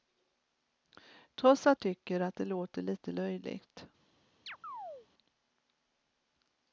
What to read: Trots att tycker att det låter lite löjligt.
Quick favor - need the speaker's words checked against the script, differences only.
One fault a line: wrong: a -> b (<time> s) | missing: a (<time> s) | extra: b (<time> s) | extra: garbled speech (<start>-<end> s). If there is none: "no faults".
no faults